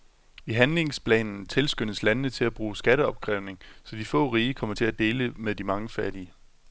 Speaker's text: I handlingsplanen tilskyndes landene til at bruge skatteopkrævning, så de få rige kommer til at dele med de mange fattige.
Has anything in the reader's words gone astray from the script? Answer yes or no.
no